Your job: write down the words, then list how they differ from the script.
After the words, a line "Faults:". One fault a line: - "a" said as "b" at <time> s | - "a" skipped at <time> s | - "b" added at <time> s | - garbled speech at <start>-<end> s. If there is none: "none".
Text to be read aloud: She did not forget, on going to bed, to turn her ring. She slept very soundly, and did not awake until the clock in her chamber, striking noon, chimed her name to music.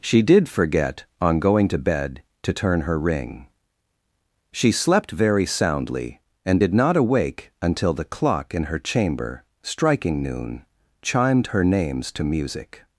She did forget, on going to bed, to turn her ring. She slept very soundly, and did not awake until the clock in her chamber, striking noon, chimed her names to music.
Faults:
- "not" skipped at 0.5 s
- "name" said as "names" at 11.6 s